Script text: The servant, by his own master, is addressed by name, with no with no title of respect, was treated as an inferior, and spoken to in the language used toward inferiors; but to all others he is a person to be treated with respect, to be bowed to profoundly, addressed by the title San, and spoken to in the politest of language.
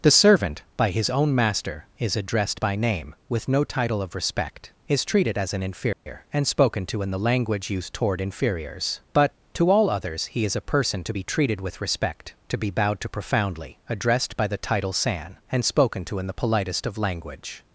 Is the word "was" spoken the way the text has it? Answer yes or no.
no